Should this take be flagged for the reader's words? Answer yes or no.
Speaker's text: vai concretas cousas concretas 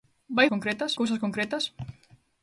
no